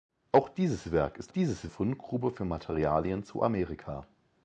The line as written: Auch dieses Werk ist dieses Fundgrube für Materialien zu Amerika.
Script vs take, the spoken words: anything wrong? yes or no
no